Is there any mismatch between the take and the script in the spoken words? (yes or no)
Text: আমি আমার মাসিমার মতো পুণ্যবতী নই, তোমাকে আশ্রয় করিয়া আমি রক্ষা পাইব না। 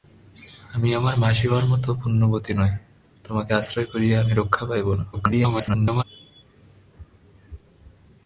yes